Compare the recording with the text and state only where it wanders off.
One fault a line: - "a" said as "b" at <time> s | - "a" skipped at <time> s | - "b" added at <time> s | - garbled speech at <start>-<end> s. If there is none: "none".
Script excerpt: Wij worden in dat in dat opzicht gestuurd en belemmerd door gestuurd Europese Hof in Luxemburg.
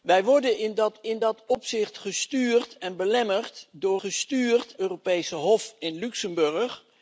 none